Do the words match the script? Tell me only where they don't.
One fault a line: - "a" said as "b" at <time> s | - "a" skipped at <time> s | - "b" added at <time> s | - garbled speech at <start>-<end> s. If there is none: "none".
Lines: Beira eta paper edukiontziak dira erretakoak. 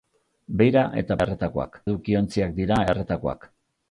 - "paper" said as "erretakoak" at 1.3 s